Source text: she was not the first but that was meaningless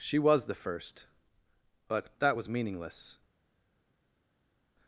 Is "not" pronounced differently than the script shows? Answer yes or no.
yes